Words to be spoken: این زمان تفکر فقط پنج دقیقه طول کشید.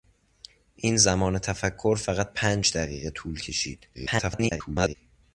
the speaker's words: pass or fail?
fail